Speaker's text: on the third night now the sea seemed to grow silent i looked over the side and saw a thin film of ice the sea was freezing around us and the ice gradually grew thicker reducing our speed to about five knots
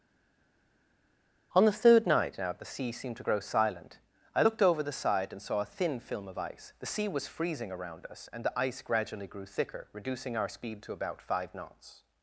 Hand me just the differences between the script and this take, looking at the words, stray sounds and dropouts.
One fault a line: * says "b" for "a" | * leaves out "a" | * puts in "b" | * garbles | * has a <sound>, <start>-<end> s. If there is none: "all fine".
all fine